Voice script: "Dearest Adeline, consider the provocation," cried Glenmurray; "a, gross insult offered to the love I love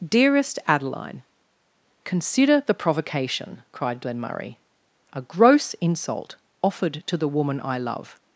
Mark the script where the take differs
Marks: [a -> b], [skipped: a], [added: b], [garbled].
"Dearest Adeline, consider the provocation," cried Glenmurray; "a, gross insult offered to the [love -> woman] I love